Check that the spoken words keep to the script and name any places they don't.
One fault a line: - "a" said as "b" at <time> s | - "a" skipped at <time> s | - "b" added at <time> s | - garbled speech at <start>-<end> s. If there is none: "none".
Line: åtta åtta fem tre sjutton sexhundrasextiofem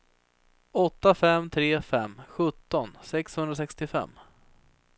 - "åtta" skipped at 1.1 s
- "fem" added at 1.8 s